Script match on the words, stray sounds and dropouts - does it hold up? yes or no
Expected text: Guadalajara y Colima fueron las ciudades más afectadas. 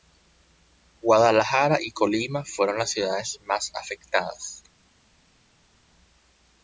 yes